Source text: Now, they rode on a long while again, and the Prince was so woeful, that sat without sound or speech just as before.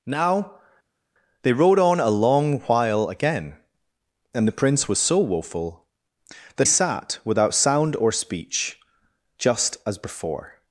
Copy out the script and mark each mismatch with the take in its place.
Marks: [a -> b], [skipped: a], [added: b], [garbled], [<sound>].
Now, they rode on a long while again, and the Prince was so woeful, that sat without sound or speech just as before.